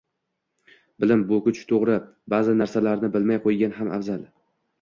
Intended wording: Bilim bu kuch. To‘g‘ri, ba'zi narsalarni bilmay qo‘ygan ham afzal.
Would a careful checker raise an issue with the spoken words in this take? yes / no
no